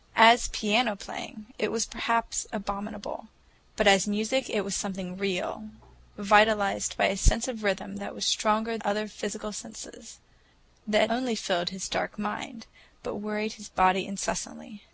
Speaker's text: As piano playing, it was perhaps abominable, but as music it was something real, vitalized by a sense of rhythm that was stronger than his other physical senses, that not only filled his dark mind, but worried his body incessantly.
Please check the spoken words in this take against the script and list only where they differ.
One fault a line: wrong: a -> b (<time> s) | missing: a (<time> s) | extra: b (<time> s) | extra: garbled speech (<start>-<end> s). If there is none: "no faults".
missing: than his (8.8 s)
missing: not (11.1 s)